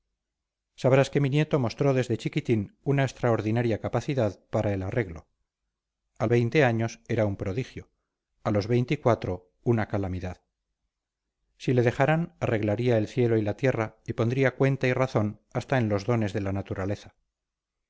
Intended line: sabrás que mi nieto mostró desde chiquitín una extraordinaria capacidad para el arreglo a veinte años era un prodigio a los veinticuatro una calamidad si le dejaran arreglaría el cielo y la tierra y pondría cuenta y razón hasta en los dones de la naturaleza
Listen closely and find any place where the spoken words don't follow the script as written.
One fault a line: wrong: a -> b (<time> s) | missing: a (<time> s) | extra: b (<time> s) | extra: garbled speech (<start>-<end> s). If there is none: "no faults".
no faults